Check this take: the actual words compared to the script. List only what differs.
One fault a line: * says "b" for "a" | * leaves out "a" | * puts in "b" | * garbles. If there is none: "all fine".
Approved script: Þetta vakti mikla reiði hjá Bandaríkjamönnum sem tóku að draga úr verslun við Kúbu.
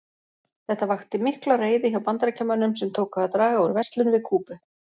all fine